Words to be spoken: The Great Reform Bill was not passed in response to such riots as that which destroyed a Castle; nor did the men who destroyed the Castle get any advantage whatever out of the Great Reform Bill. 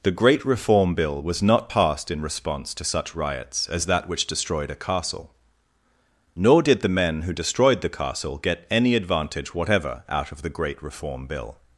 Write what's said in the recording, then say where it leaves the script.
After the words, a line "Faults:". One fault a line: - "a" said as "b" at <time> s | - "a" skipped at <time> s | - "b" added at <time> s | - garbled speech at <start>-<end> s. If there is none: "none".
The Great Reform Bill was not passed in response to such riots as that which destroyed a Castle; nor did the men who destroyed the Castle get any advantage whatever out of the Great Reform Bill.
Faults:
none